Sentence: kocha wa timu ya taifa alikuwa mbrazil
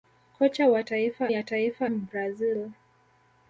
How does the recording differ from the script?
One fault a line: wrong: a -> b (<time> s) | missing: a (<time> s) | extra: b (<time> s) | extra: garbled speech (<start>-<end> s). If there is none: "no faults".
wrong: timu -> taifa (0.8 s)
missing: alikuwa (1.9 s)